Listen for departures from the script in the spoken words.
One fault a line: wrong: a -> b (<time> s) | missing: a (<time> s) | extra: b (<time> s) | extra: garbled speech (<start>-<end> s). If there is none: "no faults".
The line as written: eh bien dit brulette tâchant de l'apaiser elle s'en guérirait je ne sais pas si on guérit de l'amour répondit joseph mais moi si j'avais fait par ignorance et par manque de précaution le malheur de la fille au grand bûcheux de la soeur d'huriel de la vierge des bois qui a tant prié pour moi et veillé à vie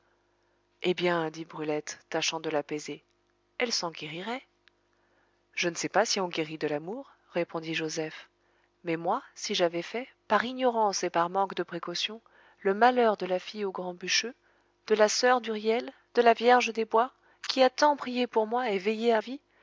no faults